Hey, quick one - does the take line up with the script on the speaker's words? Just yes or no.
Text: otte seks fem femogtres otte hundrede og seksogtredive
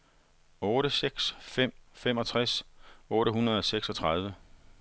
yes